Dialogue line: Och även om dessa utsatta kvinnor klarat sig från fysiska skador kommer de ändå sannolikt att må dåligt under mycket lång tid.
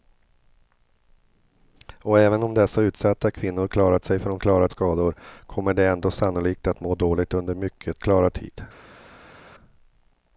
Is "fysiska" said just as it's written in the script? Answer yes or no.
no